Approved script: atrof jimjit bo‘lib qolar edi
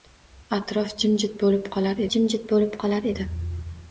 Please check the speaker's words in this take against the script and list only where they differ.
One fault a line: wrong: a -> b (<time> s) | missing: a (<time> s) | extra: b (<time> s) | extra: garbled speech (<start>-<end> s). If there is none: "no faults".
extra: jimjit bo‘lib qolar (2.1 s)